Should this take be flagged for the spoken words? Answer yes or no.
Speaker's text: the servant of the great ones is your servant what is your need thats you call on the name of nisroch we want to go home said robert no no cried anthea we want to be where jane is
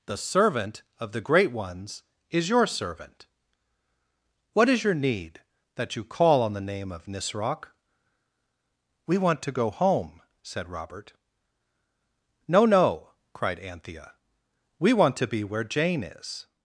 yes